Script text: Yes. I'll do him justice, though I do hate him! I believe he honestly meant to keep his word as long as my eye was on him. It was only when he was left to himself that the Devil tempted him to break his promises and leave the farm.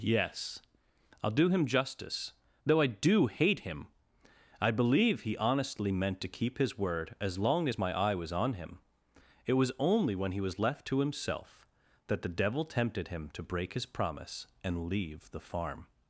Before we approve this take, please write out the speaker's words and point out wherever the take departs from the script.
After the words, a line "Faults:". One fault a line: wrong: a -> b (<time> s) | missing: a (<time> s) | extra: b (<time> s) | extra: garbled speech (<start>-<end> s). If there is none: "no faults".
Yes. I'll do him justice, though I do hate him! I believe he honestly meant to keep his word as long as my eye was on him. It was only when he was left to himself that the Devil tempted him to break his promise and leave the farm.
Faults:
wrong: promises -> promise (13.9 s)